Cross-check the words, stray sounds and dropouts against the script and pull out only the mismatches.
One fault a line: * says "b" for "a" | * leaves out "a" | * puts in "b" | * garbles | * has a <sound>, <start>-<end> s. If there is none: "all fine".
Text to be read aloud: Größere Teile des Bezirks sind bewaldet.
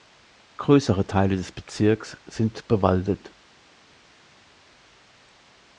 all fine